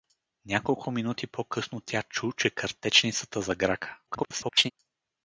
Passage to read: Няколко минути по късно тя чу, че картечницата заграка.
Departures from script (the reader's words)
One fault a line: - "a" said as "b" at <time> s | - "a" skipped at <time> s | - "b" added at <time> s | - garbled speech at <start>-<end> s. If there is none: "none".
- garbled speech at 4.1-4.7 s